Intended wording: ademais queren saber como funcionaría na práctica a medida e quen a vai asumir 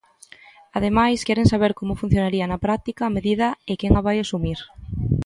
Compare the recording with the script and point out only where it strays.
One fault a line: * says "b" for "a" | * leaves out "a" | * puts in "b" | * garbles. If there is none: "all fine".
all fine